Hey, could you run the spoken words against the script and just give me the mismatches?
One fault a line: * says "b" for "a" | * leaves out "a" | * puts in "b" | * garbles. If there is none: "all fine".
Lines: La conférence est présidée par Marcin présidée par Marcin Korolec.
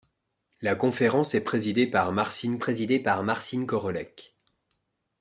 all fine